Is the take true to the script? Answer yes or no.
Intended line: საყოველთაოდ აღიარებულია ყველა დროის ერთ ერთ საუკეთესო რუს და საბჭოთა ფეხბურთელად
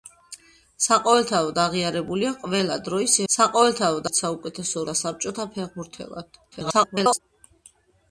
no